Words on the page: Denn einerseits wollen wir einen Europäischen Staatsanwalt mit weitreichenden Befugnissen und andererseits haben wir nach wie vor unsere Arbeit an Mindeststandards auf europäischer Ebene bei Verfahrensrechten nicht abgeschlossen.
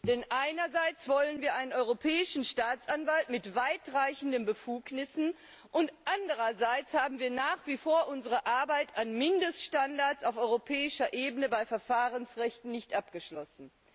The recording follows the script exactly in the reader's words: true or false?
true